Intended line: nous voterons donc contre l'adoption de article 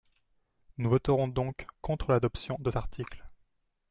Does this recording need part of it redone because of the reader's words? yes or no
no